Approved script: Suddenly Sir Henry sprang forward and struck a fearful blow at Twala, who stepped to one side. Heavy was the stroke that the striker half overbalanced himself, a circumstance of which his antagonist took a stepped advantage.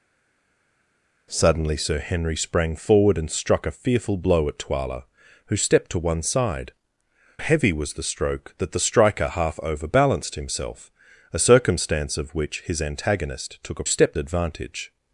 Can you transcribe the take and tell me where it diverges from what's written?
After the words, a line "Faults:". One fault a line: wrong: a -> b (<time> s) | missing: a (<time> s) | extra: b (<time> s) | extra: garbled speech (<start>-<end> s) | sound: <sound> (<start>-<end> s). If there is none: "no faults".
Suddenly Sir Henry sprang forward and struck a fearful blow at Twala, who stepped to one side. Heavy was the stroke that the striker half overbalanced himself, a circumstance of which his antagonist took a stepped advantage.
Faults:
no faults